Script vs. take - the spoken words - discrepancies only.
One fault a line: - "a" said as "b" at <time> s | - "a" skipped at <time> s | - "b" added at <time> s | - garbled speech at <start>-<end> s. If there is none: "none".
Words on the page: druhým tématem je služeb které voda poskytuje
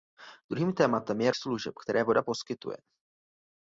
none